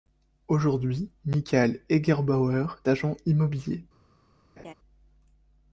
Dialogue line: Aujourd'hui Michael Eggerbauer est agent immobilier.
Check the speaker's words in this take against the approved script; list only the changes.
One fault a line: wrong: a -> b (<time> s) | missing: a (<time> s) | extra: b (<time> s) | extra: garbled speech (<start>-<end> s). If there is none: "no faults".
missing: est (2.6 s)